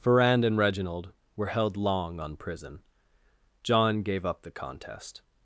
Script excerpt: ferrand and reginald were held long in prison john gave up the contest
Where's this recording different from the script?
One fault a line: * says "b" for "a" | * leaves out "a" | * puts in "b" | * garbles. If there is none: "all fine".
* says "on" for "in"